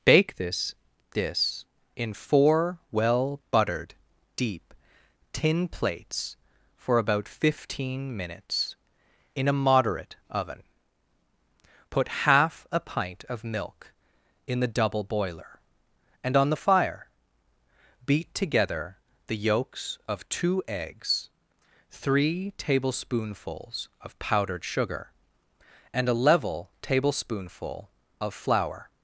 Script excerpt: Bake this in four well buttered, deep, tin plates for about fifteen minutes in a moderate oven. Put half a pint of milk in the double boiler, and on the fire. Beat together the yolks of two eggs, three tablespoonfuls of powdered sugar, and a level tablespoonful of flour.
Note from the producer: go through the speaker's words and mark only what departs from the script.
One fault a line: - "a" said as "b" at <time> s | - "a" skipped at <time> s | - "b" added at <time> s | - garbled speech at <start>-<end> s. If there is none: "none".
- "this" added at 1.1 s